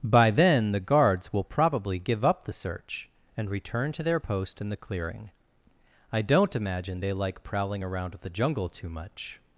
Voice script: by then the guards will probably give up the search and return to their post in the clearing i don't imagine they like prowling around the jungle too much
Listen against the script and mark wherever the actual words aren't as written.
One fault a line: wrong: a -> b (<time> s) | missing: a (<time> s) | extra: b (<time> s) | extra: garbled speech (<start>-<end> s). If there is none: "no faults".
no faults